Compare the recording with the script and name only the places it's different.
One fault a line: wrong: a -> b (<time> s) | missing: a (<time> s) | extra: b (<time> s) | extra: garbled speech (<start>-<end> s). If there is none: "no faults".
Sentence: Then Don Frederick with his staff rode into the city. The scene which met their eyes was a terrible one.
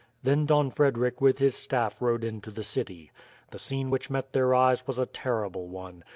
no faults